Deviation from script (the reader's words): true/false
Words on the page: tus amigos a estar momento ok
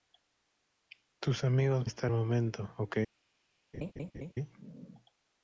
false